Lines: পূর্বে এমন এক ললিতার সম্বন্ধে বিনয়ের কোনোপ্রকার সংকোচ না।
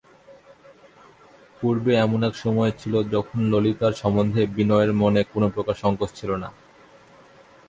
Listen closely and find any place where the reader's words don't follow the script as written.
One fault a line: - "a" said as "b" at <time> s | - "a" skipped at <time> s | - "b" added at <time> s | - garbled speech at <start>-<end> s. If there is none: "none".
- "সময় ছিল যখন" added at 2.3 s
- "মনে" added at 4.9 s
- "ছিল" added at 6.1 s